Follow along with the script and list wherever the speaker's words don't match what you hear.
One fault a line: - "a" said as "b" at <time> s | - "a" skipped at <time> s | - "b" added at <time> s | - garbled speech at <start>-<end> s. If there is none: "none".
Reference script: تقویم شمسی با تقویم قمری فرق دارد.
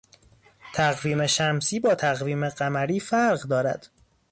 none